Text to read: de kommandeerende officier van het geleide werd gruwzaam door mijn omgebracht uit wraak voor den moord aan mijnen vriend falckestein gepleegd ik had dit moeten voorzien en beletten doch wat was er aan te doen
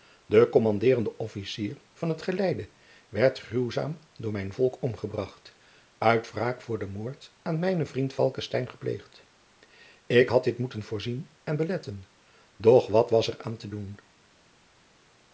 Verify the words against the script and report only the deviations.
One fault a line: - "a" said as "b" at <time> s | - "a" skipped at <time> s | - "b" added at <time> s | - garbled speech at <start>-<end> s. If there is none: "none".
- "volk" added at 4.5 s